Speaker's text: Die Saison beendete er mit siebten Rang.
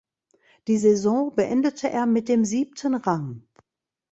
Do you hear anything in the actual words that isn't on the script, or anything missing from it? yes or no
yes